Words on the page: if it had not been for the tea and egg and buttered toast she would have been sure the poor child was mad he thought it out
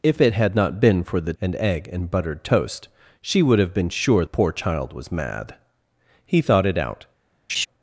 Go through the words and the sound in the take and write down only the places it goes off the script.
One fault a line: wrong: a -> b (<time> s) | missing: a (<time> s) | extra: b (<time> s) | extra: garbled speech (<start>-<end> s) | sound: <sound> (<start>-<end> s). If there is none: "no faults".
missing: tea (1.3 s)
missing: the (4.2 s)
sound: laugh (7.5-7.7 s)